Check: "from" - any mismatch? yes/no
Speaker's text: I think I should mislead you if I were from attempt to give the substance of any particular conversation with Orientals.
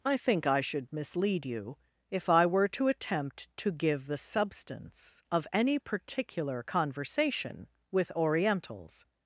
yes